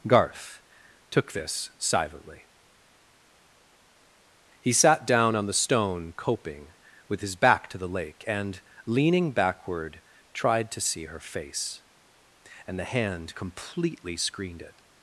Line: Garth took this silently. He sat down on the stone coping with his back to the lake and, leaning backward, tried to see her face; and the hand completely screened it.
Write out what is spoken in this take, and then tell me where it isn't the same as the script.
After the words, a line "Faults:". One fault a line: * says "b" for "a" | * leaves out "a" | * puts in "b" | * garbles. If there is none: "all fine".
Garth took this silently. He sat down on the stone coping with his back to the lake and, leaning backward, tried to see her face; and the hand completely screened it.
Faults:
all fine